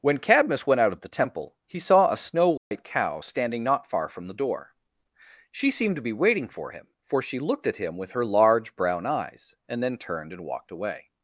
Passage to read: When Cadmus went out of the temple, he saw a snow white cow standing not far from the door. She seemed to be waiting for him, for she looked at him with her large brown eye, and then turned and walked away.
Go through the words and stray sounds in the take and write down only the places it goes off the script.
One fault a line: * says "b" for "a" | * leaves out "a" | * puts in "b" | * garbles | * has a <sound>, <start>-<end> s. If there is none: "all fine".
* has a dropout, 2.6-2.7 s
* says "eyes" for "eye"